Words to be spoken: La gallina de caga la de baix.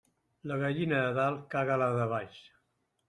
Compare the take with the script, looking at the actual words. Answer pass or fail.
fail